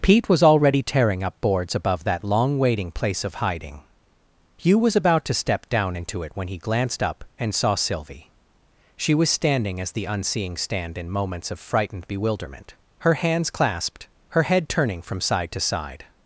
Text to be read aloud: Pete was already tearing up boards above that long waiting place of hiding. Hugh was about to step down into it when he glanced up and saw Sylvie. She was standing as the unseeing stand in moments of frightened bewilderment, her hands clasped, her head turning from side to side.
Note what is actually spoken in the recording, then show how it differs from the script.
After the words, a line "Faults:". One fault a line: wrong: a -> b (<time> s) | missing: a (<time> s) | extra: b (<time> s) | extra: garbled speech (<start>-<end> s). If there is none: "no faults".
Pete was already tearing up boards above that long waiting place of hiding. Hugh was about to step down into it when he glanced up and saw Sylvie. She was standing as the unseeing stand in moments of frightened bewilderment, her hands clasped, her head turning from side to side.
Faults:
no faults